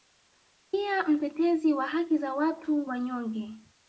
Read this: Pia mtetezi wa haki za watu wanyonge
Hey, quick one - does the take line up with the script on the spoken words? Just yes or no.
yes